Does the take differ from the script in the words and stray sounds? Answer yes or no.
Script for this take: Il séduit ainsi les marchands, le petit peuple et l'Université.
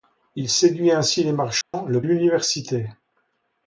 yes